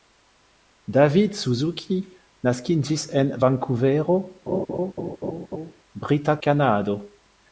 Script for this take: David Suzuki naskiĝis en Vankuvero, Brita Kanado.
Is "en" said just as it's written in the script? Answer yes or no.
yes